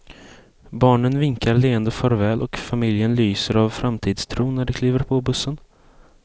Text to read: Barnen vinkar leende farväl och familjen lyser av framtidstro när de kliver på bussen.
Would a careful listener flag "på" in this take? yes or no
no